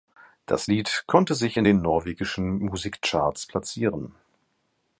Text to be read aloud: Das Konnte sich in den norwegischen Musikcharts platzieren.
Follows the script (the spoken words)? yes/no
no